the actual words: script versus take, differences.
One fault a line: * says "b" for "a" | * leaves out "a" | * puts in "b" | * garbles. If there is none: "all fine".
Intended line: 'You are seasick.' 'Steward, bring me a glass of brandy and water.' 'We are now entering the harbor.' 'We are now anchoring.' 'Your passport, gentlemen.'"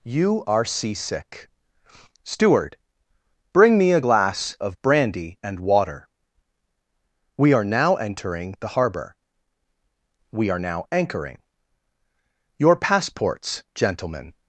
* says "passports" for "passport"